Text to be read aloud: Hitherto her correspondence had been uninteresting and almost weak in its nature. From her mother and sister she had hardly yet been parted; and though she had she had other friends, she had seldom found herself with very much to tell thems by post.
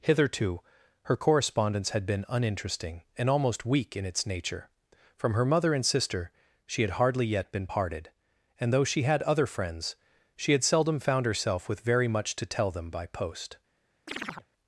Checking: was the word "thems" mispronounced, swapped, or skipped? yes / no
yes